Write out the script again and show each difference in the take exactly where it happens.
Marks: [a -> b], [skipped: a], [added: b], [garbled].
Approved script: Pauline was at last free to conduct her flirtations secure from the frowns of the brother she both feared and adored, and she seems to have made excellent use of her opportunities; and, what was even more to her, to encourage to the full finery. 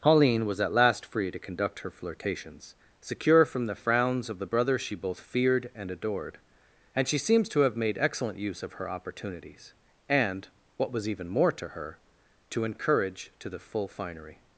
Pauline was at last free to conduct her flirtations secure from the frowns of the brother she both feared and adored, and she seems to have made excellent use of her opportunities; and, what was even more to her, to encourage to the full finery.